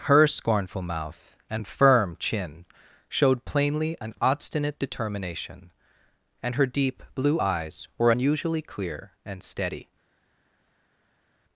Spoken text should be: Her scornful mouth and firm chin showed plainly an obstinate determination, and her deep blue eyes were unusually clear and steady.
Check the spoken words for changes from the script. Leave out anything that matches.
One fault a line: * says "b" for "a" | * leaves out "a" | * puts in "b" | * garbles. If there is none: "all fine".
all fine